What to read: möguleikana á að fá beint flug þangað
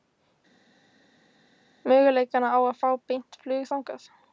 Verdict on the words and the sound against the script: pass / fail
pass